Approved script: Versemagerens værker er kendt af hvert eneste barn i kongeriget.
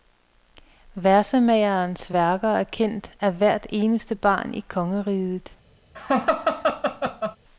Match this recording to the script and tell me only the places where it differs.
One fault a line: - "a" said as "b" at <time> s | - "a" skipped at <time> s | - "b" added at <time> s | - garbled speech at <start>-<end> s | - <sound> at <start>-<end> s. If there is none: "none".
- laugh at 5.9-7.4 s